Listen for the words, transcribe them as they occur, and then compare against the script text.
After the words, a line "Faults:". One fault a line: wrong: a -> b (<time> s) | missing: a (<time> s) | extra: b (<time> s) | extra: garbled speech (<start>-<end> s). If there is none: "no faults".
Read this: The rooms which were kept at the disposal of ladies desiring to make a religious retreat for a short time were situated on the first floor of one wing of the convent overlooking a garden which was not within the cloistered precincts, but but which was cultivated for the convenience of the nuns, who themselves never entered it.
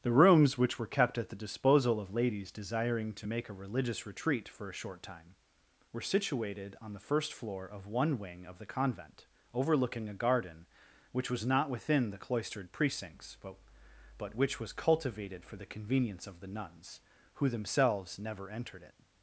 The rooms which were kept at the disposal of ladies desiring to make a religious retreat for a short time were situated on the first floor of one wing of the convent overlooking a garden which was not within the cloistered precincts, but but which was cultivated for the convenience of the nuns, who themselves never entered it.
Faults:
no faults